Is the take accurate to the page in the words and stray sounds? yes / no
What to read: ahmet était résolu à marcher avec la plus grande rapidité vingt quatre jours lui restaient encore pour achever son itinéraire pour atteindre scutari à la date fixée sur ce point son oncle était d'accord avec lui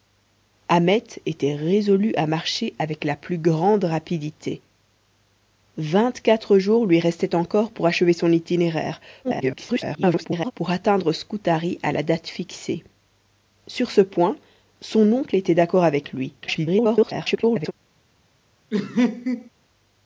no